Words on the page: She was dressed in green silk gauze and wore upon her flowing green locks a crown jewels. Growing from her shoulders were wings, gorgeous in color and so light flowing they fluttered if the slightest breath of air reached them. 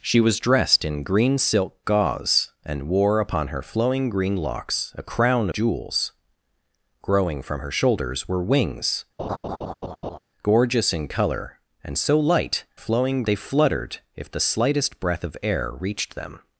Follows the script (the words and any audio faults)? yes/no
no